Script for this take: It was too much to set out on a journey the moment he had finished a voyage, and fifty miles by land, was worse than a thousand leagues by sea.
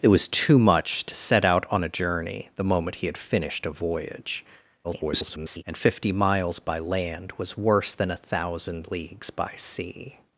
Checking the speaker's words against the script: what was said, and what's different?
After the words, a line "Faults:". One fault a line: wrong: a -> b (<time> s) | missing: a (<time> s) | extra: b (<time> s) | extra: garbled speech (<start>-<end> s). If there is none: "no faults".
It was too much to set out on a journey the moment he had finished a voyage, [garbled] and fifty miles by land, was worse than a thousand leagues by sea.
Faults:
extra: garbled speech (4.8-5.6 s)